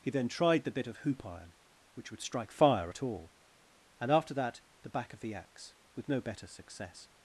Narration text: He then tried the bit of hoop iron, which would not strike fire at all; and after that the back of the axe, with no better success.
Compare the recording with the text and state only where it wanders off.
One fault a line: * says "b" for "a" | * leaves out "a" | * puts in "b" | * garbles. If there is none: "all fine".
* leaves out "not"